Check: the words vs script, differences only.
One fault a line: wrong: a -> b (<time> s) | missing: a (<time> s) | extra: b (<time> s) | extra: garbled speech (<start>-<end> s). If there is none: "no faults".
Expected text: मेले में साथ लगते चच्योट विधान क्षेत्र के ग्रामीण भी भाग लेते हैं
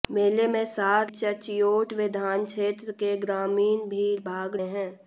missing: लगते (1.1 s)
missing: लेते (4.5 s)